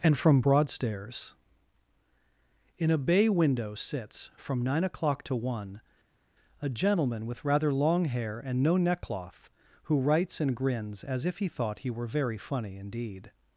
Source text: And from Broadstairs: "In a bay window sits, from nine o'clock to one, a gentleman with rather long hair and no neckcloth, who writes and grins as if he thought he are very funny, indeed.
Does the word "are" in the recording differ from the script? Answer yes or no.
yes